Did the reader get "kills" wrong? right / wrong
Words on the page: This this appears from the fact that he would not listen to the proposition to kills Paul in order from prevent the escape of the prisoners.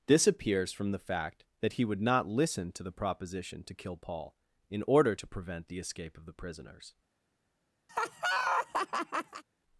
wrong